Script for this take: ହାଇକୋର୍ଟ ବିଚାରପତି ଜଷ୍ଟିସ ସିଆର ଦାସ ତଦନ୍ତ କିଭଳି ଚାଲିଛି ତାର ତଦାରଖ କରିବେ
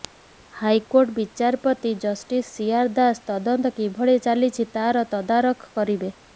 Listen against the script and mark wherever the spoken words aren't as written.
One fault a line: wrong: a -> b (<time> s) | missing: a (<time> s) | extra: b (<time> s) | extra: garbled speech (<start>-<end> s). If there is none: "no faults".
no faults